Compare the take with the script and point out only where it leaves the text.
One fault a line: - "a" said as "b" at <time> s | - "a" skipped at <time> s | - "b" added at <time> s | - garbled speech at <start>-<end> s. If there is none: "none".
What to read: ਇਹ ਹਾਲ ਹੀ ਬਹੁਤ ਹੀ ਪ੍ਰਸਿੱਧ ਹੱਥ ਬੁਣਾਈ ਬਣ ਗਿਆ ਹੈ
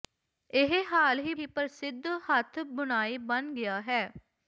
- "ਬਹੁਤ" skipped at 1.3 s